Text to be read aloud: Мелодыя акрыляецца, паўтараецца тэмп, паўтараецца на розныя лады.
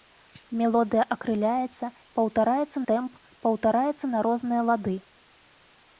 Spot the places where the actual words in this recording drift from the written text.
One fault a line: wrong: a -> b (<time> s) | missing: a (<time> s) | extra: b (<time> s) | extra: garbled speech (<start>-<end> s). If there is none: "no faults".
no faults